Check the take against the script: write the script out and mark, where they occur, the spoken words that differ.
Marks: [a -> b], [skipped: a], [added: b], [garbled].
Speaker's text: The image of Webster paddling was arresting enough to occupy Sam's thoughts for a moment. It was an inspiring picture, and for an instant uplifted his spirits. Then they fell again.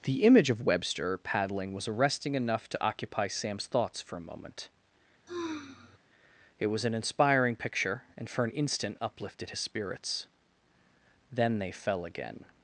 The image of Webster paddling was arresting enough to occupy Sam's thoughts for a moment. It was an inspiring picture, and for an instant uplifted his spirits. Then they fell again.